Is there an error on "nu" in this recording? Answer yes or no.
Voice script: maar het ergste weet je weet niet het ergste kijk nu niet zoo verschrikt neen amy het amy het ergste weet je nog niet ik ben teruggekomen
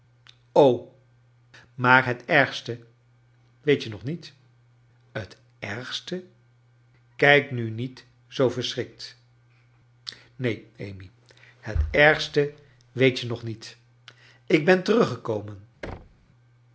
no